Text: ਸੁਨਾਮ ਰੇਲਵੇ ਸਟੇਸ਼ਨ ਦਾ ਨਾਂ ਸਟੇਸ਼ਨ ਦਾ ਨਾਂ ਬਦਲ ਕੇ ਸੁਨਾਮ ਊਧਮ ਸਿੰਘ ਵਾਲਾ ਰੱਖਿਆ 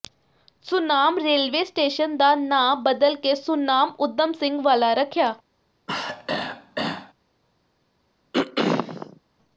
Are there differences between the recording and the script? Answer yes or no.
yes